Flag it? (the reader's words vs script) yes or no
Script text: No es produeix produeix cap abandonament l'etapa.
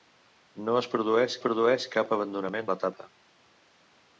no